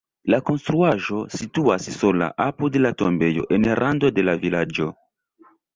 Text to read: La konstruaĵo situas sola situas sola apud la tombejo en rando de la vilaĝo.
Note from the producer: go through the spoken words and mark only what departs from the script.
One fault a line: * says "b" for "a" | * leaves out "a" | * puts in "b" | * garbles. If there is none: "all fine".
* leaves out "situas sola"